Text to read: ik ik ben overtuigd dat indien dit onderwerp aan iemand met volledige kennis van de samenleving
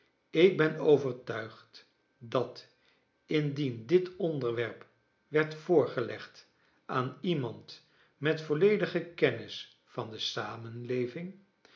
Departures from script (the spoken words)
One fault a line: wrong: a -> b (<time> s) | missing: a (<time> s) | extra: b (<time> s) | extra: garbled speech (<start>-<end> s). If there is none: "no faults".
missing: ik (0.6 s)
extra: werd voorgelegd (5.3 s)